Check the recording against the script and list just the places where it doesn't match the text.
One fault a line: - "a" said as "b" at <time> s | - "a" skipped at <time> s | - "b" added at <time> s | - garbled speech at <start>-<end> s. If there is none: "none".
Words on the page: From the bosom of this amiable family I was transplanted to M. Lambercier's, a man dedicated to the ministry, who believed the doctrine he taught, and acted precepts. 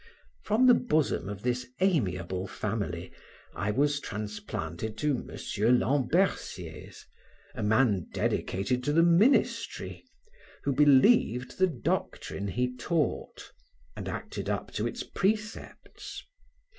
- "up to its" added at 14.5 s